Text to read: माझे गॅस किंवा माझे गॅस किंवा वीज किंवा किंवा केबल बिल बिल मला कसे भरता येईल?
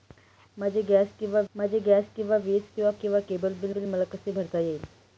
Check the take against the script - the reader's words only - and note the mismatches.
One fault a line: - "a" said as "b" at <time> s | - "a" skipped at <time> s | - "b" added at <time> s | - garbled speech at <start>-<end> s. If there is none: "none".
none